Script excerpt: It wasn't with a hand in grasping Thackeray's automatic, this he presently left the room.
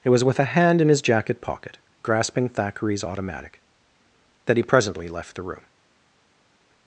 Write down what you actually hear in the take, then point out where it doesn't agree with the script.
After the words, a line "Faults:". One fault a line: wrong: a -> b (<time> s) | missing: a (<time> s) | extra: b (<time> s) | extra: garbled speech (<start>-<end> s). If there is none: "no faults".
It was with a hand in his jacket pocket, grasping Thackeray's automatic, that he presently left the room.
Faults:
wrong: wasn't -> was (0.1 s)
extra: his jacket pocket (0.9 s)
wrong: this -> that (4.5 s)